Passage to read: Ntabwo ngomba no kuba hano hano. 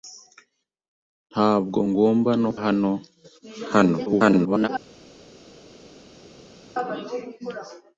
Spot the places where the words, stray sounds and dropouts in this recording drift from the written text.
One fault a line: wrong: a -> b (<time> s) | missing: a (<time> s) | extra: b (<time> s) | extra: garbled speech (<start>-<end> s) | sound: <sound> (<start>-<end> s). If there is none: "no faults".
missing: kuba (2.5 s)
extra: garbled speech (4.1-4.7 s)